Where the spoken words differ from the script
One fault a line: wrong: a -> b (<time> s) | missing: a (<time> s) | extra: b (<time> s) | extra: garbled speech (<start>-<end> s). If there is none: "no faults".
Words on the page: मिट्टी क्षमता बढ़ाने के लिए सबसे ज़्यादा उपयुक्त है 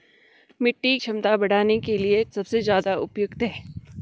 no faults